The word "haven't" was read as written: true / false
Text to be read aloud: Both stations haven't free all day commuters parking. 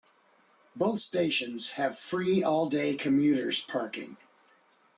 false